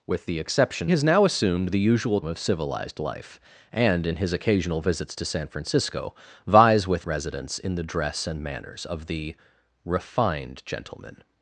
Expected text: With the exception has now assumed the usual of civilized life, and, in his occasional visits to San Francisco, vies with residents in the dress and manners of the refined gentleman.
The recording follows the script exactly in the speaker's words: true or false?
true